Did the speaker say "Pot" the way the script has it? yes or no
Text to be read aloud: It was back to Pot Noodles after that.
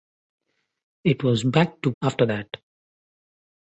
no